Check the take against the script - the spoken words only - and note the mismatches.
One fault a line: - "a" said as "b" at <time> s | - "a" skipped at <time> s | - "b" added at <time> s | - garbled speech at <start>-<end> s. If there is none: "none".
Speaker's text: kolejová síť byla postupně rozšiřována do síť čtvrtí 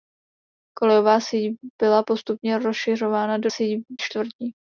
none